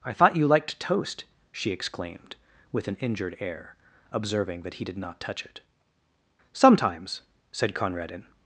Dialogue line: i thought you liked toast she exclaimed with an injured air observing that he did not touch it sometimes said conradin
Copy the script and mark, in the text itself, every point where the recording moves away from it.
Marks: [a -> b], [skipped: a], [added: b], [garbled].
i thought you liked toast she exclaimed with an injured air observing that he did not touch it sometimes said conradin